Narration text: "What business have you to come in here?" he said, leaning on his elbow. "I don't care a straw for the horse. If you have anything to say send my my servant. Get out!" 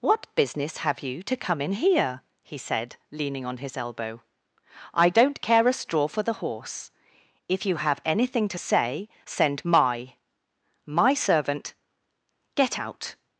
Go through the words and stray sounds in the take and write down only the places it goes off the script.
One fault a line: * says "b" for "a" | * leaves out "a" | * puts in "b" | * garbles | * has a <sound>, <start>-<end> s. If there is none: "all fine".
all fine